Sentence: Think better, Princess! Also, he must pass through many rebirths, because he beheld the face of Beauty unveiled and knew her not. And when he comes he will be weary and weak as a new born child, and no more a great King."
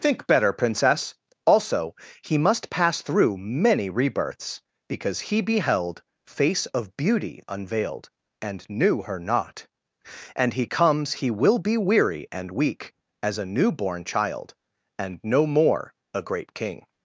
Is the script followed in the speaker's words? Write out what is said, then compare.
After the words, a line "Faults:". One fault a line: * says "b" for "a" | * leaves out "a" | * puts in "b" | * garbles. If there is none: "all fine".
Think better, Princess! Also, he must pass through many rebirths, because he beheld face of Beauty unveiled and knew her not. And he comes he will be weary and weak as a new born child, and no more a great King."
Faults:
* leaves out "the"
* leaves out "when"